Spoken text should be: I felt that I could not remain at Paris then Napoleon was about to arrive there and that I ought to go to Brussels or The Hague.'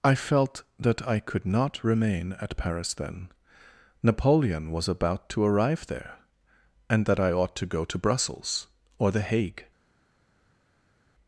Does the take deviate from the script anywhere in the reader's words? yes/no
no